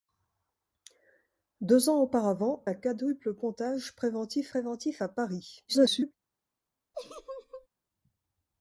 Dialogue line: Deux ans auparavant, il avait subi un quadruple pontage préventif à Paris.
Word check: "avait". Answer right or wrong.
wrong